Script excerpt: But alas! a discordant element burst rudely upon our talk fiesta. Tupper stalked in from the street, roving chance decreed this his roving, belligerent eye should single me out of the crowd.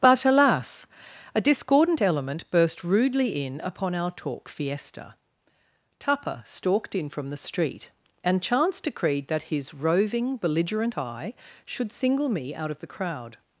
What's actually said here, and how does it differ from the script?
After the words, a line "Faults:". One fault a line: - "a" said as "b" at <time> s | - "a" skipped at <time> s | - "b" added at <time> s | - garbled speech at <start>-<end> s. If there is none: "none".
But alas! a discordant element burst rudely in upon our talk fiesta. Tupper stalked in from the street, and chance decreed that his roving, belligerent eye should single me out of the crowd.
Faults:
- "in" added at 3.5 s
- "roving" said as "and" at 8.2 s
- "this" said as "that" at 9.3 s